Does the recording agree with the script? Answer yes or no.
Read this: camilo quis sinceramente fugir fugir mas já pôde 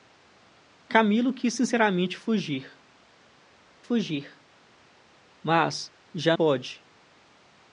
yes